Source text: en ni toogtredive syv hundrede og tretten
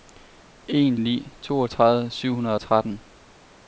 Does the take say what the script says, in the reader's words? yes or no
yes